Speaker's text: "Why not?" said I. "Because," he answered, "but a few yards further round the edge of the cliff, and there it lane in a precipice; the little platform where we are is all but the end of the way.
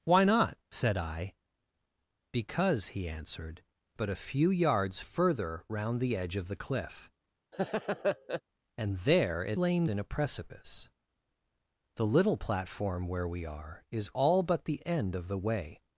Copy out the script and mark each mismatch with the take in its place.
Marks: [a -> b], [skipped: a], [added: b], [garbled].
"Why not?" said I. "Because," he answered, "but a few yards further round the edge of the cliff, and there it lane in a precipice; the little platform where we are is all but the end of the way.